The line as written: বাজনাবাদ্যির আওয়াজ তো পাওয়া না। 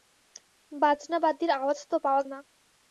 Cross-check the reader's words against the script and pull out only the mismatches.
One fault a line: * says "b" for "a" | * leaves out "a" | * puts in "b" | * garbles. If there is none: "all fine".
all fine